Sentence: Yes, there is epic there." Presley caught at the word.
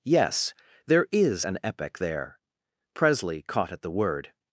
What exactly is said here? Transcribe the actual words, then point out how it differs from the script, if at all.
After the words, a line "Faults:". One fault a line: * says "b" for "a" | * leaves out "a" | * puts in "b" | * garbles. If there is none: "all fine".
Yes, there is an epic there." Presley caught at the word.
Faults:
* puts in "an"